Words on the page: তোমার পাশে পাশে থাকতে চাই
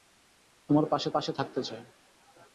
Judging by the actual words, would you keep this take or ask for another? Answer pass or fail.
pass